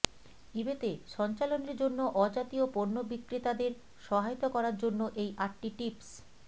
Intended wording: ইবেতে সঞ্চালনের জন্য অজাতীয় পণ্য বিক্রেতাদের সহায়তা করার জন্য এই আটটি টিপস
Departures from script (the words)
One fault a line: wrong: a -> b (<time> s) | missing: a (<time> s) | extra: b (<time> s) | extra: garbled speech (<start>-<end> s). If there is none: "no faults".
no faults